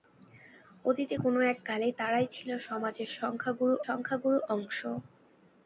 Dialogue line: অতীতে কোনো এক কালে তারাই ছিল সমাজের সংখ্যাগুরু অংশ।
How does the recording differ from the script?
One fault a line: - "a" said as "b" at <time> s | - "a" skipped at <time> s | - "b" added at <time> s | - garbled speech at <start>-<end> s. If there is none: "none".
- "সংখ্যাগুরু" added at 3.8 s